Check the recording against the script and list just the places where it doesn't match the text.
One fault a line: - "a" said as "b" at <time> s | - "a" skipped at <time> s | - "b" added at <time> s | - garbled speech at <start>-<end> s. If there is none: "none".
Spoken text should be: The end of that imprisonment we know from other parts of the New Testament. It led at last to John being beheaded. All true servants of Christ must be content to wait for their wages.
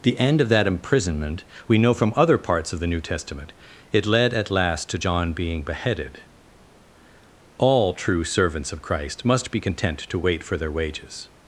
none